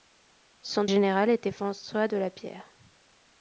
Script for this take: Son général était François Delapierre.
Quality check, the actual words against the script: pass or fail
pass